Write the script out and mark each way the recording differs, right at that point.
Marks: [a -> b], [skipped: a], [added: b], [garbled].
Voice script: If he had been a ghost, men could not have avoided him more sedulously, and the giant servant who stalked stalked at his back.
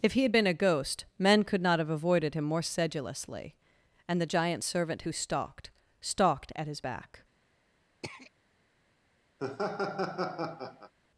If he had been a ghost, men could not have avoided him more sedulously, and the giant servant who stalked stalked at his back.